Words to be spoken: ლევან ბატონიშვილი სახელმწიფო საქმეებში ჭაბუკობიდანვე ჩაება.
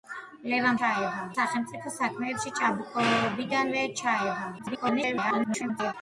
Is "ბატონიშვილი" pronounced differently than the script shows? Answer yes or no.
yes